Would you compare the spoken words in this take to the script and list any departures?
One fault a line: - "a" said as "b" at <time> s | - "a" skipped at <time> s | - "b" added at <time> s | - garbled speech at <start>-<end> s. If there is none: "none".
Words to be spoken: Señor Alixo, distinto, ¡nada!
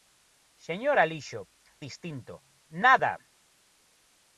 none